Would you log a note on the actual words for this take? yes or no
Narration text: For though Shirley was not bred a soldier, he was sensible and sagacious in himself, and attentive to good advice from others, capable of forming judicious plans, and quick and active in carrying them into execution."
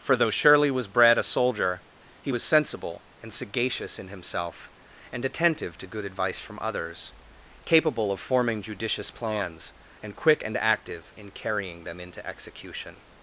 yes